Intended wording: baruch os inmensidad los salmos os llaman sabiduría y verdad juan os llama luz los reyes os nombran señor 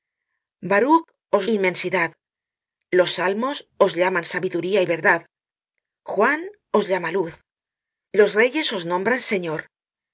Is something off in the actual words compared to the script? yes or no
no